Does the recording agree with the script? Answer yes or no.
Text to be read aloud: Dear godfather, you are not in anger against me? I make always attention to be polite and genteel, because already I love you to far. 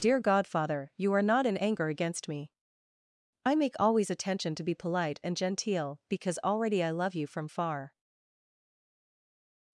no